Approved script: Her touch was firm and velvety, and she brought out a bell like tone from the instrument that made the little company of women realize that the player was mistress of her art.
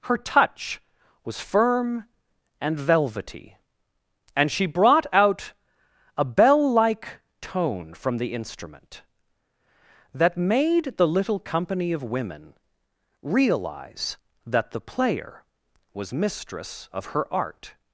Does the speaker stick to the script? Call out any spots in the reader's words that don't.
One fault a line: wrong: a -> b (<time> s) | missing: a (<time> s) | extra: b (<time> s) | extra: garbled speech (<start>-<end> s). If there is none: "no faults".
no faults